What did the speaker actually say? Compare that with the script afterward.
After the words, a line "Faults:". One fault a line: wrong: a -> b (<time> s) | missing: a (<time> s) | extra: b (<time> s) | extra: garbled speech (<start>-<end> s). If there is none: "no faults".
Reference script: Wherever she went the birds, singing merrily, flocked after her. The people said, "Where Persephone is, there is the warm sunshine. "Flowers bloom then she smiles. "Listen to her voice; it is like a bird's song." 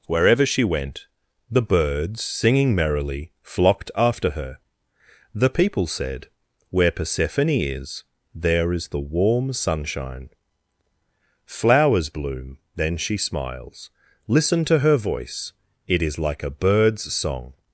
Wherever she went the birds, singing merrily, flocked after her. The people said, "Where Persephone is, there is the warm sunshine. "Flowers bloom then she smiles. "Listen to her voice; it is like a bird's song."
Faults:
no faults